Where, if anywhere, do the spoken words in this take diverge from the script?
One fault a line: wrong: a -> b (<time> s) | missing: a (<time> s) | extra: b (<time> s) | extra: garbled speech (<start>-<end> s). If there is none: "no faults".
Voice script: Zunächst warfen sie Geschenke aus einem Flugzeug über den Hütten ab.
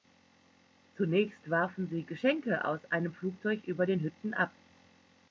no faults